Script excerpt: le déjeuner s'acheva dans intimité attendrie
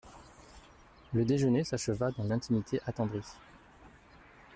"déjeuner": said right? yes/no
yes